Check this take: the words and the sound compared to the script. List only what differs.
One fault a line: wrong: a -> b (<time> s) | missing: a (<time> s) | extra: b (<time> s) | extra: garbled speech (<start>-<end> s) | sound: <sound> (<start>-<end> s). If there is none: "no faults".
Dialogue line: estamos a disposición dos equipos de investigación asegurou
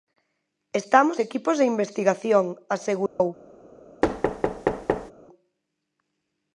missing: a disposición dos (1.2 s)
sound: dropout (3.1-3.2 s)
sound: thud (4.0-5.1 s)